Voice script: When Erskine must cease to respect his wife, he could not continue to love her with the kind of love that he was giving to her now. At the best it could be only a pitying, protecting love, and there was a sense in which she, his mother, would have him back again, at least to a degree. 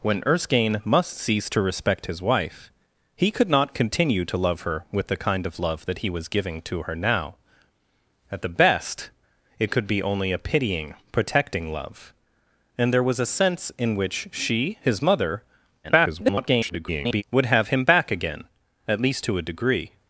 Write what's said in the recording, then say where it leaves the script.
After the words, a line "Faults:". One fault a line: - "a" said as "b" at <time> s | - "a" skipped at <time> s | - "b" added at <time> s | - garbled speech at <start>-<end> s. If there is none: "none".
When Erskine must cease to respect his wife, he could not continue to love her with the kind of love that he was giving to her now. At the best it could be only a pitying, protecting love, and there was a sense in which she, his mother, [garbled] would have him back again, at least to a degree.
Faults:
- garbled speech at 15.8-17.2 s